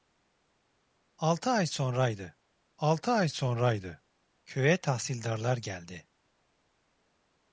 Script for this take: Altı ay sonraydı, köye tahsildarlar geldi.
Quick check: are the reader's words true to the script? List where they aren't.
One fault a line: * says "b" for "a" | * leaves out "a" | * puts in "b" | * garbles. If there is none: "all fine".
* puts in "altı ay sonraydı"